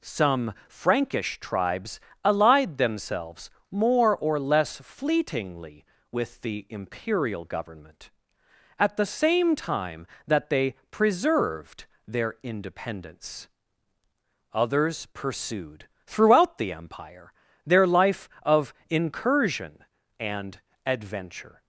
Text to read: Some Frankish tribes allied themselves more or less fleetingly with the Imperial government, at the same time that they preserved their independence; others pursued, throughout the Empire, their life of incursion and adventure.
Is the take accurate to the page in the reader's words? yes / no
yes